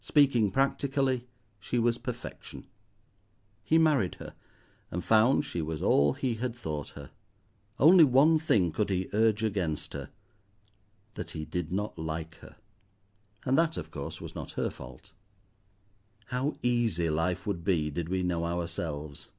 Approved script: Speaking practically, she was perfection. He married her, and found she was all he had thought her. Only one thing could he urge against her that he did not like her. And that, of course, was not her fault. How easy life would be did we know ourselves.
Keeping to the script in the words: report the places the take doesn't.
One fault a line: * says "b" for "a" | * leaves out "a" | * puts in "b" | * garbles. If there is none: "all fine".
all fine